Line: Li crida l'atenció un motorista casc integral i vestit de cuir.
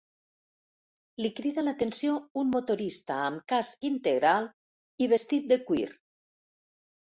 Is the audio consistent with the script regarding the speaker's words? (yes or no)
no